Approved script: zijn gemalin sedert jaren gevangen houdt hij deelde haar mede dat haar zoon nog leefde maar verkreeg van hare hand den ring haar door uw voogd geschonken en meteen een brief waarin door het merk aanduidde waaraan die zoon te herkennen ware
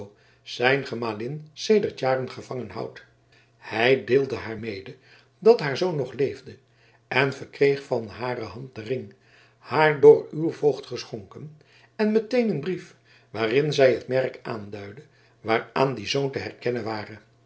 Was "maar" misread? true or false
true